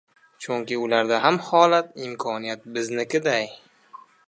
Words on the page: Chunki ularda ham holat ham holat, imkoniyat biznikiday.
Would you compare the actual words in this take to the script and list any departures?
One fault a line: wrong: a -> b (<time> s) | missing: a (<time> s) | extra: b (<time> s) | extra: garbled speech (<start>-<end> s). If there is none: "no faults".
missing: ham holat (1.9 s)